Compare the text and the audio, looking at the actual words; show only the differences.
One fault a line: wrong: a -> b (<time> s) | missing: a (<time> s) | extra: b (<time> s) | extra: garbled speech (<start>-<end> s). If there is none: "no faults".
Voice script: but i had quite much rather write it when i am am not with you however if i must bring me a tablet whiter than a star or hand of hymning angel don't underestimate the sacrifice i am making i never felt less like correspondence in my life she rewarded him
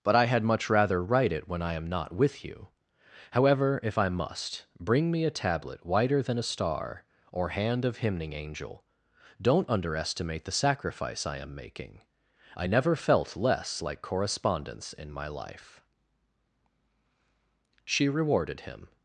missing: quite (0.4 s)
missing: am (1.9 s)